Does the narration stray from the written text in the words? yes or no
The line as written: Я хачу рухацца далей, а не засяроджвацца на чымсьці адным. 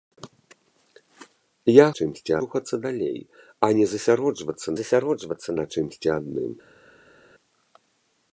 yes